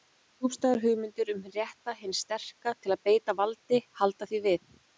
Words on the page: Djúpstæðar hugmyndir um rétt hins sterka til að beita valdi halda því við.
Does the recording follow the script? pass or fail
pass